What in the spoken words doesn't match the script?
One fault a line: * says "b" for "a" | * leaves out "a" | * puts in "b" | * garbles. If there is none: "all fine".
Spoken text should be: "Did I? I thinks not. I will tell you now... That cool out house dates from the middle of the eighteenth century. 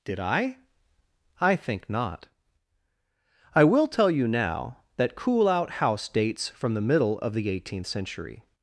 * says "think" for "thinks"